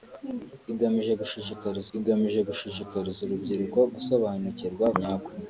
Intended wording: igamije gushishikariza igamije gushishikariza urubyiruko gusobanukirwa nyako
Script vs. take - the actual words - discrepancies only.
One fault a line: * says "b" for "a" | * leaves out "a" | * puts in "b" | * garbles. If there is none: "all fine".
all fine